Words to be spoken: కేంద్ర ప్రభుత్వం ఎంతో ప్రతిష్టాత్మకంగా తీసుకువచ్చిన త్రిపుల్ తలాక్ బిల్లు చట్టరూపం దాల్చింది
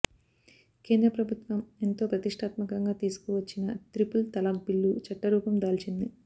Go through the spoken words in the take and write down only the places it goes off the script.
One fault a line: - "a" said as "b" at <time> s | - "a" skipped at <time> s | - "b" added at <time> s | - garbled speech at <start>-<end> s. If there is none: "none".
none